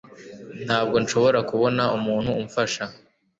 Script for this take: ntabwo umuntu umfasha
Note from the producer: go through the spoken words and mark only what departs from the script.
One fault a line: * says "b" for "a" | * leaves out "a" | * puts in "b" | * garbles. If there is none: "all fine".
* puts in "nshobora kubona"